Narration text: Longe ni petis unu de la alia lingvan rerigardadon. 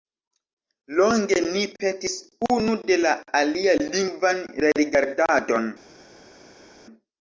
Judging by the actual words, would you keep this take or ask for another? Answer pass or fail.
pass